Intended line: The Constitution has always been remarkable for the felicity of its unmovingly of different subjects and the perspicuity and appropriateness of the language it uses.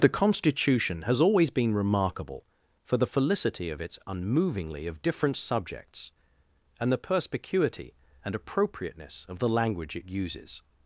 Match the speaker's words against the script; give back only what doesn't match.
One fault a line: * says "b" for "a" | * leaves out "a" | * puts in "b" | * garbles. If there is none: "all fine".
all fine